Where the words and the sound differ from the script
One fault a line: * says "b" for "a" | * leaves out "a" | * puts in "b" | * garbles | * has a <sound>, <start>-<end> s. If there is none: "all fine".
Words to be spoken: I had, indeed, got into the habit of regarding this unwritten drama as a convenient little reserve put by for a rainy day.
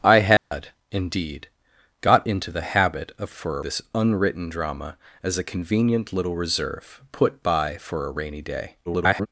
* has a dropout, 0.4-0.5 s
* says "for" for "regarding"
* garbles